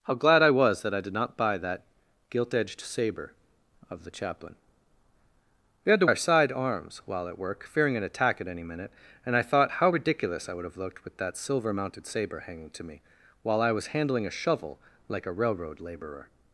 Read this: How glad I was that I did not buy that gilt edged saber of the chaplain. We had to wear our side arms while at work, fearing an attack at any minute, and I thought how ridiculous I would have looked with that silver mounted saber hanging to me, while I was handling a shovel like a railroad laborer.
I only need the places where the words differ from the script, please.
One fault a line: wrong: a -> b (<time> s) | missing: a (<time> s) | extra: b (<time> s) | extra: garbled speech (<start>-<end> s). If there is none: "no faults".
missing: wear (6.1 s)